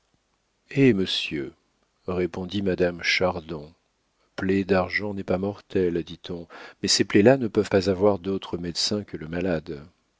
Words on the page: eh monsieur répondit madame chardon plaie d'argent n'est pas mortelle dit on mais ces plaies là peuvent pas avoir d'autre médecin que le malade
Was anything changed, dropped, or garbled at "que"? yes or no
no